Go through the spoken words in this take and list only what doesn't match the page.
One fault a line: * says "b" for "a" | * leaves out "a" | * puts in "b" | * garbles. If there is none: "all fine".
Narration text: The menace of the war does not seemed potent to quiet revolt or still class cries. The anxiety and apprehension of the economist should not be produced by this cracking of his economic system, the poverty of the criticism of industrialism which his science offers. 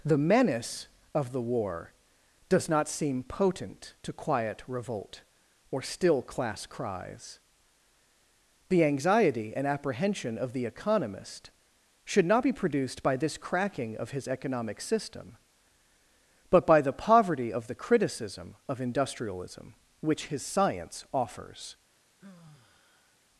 * says "seem" for "seemed"
* puts in "but by"